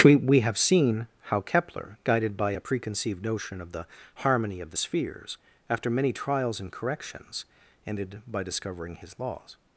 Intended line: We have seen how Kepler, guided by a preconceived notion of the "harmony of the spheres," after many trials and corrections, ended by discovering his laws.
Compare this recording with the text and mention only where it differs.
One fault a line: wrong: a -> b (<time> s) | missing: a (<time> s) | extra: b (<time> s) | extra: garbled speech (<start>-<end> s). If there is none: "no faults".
extra: we (0.1 s)